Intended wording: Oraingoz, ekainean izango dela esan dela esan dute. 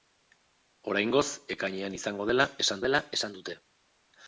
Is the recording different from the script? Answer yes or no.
no